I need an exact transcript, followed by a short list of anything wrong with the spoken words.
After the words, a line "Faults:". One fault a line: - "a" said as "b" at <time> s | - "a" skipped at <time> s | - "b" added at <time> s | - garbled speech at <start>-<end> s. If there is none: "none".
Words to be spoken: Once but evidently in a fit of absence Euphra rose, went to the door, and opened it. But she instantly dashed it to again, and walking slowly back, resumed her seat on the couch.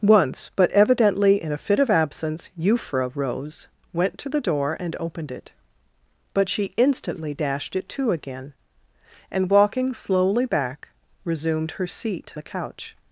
Once but evidently in a fit of absence Euphra rose, went to the door, and opened it. But she instantly dashed it to again, and walking slowly back, resumed her seat the couch.
Faults:
- "on" skipped at 12.3 s